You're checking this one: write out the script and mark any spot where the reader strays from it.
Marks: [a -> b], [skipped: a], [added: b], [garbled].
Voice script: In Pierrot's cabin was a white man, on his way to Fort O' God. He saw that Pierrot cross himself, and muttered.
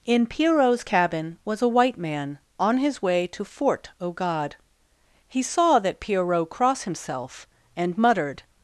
In Pierrot's cabin was a white man, on his way to Fort O' God. He saw that Pierrot cross himself, and muttered.